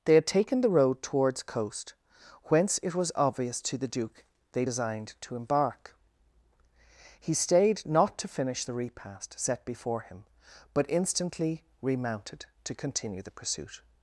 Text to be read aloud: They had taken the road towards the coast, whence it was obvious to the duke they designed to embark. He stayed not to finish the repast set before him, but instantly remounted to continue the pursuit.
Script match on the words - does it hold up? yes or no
no